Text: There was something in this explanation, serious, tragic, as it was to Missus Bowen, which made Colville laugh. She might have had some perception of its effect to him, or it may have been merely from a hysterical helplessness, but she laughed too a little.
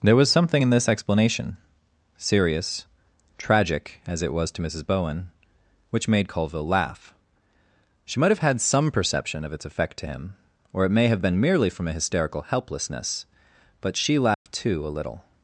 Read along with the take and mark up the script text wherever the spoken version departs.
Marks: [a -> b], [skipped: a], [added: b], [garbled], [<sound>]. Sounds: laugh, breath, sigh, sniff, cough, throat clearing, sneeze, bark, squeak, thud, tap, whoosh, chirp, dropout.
There was something in this explanation, serious, tragic, as it was to Missus Bowen, which made Colville laugh. She might have had some perception of its effect to him, or it may have been merely from a hysterical helplessness, but she laughed [dropout] too a little.